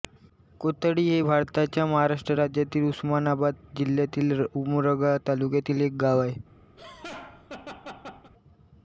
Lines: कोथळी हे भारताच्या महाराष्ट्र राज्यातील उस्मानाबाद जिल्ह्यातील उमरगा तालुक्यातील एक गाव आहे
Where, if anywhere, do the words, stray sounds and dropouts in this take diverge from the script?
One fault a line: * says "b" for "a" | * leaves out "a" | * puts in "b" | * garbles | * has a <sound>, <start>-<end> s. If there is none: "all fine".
* has a laugh, 6.8-8.3 s